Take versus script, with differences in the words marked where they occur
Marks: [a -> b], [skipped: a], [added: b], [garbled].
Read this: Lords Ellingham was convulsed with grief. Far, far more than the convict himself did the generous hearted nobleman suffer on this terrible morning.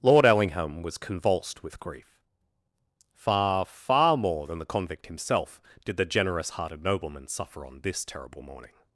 [Lords -> Lord] Ellingham was convulsed with grief. Far, far more than the convict himself did the generous hearted nobleman suffer on this terrible morning.